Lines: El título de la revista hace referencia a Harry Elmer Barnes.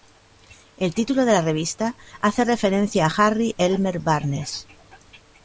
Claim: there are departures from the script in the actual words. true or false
false